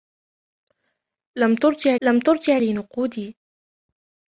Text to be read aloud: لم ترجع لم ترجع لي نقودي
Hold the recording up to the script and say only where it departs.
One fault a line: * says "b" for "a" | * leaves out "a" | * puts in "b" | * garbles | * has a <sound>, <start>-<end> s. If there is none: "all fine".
all fine